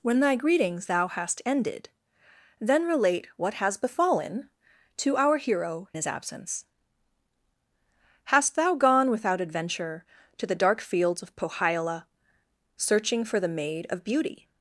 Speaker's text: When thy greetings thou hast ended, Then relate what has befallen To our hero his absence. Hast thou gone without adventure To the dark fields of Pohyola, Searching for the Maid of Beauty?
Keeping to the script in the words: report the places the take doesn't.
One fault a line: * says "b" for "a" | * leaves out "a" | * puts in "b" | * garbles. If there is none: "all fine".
all fine